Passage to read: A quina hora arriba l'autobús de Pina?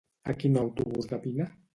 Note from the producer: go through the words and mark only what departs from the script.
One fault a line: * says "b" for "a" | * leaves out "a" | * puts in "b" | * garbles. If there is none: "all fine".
* leaves out "hora arriba"